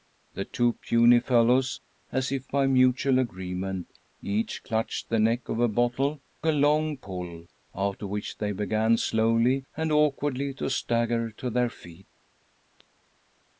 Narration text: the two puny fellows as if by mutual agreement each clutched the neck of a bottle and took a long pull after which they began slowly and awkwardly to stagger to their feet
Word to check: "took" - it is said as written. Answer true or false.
false